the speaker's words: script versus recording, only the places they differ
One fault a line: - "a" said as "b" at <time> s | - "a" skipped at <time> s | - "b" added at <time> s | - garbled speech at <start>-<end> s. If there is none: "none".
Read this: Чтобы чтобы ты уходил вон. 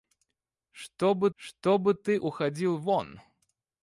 none